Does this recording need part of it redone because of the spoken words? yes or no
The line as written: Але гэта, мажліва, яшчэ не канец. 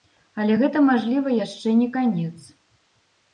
no